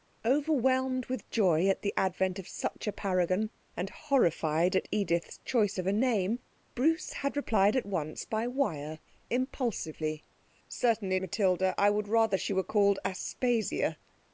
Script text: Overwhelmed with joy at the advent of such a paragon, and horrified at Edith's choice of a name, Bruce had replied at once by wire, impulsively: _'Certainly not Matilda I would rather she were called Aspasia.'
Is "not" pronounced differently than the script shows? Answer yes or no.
yes